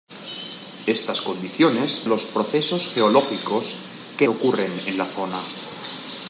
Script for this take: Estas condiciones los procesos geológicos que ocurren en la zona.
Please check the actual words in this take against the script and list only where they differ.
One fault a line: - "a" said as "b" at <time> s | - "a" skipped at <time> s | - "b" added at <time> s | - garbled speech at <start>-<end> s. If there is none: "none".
none